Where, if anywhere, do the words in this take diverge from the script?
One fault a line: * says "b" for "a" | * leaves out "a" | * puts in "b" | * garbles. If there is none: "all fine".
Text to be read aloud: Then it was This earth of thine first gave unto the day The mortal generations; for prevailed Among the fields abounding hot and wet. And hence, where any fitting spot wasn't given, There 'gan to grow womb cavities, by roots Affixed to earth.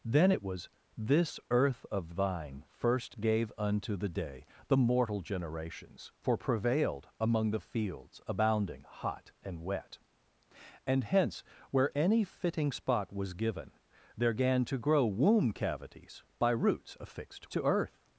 * says "was" for "wasn't"